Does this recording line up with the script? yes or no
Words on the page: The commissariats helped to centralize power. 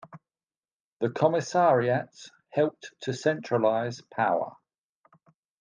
yes